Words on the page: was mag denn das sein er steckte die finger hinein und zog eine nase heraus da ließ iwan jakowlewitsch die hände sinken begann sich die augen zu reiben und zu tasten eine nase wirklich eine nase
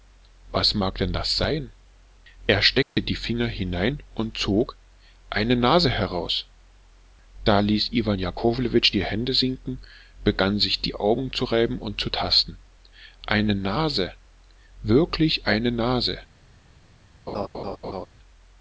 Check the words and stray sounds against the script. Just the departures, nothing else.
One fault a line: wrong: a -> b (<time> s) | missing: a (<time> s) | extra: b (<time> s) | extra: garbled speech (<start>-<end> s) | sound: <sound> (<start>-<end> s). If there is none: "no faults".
sound: dropout (2.8-3.0 s)
sound: laugh (17.3-18.1 s)